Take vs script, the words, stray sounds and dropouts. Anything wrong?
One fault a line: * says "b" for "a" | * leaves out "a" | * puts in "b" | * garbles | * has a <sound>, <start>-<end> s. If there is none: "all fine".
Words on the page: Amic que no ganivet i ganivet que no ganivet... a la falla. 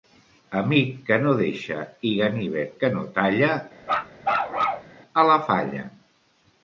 * says "deixa" for "ganivet"
* says "talla" for "ganivet"
* has a bark, 3.8-4.9 s